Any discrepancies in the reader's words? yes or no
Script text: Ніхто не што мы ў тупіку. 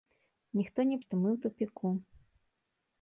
no